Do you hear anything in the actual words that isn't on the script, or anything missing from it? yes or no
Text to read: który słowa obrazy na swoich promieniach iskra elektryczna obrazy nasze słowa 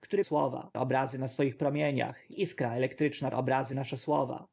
no